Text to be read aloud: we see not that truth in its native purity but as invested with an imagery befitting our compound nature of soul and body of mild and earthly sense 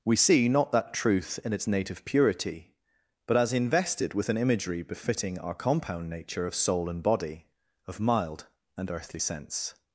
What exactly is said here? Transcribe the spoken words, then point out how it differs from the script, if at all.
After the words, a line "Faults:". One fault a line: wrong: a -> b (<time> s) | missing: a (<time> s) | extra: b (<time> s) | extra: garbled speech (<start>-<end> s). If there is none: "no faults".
we see not that truth in its native purity but as invested with an imagery befitting our compound nature of soul and body of mild and earthly sense
Faults:
no faults